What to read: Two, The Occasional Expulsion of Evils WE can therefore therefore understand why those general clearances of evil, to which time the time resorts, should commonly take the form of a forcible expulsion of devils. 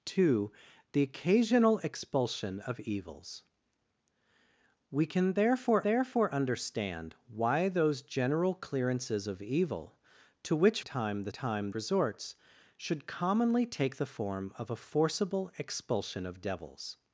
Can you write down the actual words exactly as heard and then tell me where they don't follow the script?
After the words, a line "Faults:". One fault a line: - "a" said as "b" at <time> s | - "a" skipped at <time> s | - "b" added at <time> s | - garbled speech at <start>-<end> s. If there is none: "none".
Two, The Occasional Expulsion of Evils WE can therefore therefore understand why those general clearances of evil, to which time the time resorts, should commonly take the form of a forcible expulsion of devils.
Faults:
none